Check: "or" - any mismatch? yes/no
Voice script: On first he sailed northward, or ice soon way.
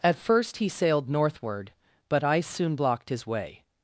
yes